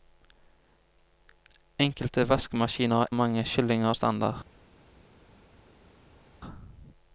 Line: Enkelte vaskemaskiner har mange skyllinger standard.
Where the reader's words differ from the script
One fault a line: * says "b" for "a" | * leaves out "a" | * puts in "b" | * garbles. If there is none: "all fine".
all fine